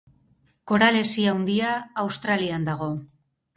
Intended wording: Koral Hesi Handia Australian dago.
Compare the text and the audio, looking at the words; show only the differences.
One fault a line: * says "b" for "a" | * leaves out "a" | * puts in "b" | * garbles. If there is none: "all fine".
all fine